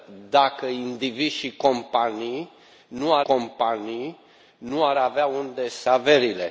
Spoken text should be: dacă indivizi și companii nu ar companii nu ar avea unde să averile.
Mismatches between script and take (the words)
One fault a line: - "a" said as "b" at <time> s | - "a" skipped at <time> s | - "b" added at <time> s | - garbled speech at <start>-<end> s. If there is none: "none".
none